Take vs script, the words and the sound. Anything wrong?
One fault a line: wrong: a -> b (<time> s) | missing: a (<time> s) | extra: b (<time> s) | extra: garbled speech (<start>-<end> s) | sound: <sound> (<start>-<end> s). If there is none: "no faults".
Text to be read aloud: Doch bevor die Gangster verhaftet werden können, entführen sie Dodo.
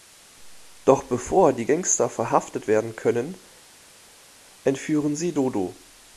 no faults